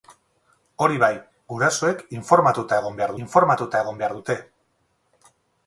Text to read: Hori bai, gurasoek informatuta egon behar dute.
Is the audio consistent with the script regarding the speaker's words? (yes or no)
no